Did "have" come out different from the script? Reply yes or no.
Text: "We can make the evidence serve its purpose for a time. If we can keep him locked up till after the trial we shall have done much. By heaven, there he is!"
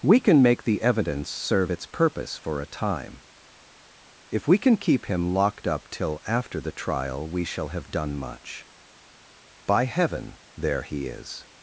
no